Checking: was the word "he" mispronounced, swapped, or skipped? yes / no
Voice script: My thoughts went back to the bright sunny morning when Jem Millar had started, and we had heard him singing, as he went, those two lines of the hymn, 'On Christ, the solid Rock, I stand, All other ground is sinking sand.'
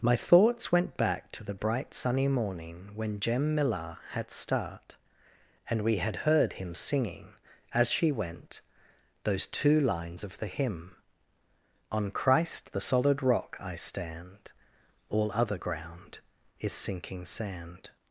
yes